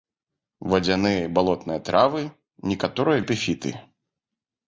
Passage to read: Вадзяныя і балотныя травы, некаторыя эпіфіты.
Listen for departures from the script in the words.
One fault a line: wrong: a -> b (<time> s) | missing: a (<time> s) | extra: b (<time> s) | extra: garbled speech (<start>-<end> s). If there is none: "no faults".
no faults